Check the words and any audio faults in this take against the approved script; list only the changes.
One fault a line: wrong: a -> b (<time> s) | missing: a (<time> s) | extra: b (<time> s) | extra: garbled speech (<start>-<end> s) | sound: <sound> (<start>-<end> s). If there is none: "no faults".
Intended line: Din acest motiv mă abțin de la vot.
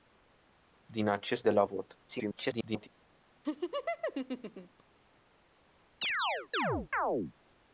missing: motiv mă abțin (1.5 s)
extra: garbled speech (2.1-2.9 s)
sound: laugh (3.4-4.8 s)
sound: chirp (6.0-7.3 s)